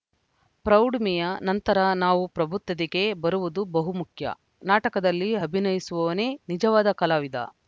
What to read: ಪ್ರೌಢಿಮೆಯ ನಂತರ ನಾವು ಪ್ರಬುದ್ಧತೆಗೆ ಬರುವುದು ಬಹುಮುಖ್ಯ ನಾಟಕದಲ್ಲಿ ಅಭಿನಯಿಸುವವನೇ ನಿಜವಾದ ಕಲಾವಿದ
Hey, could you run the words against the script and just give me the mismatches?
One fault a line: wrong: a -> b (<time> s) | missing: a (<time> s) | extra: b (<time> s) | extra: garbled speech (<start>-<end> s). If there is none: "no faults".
no faults